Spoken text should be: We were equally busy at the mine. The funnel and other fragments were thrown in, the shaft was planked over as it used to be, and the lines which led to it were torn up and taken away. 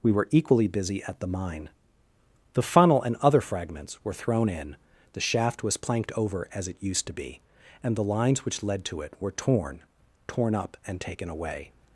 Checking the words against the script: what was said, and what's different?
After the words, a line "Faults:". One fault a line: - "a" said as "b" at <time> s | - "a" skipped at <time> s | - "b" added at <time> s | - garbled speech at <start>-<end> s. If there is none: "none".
We were equally busy at the mine. The funnel and other fragments were thrown in, the shaft was planked over as it used to be, and the lines which led to it were torn torn up and taken away.
Faults:
- "torn" added at 10.3 s